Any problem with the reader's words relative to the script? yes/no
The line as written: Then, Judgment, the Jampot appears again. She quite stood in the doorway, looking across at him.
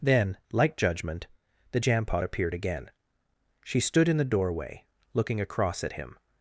yes